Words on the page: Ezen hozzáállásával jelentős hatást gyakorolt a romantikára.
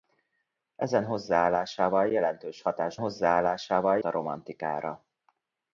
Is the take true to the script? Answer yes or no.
no